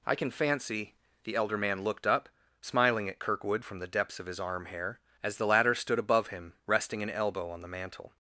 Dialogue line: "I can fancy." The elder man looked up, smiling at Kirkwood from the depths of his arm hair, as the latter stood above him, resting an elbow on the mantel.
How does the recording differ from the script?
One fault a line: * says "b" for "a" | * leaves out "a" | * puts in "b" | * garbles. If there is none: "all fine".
all fine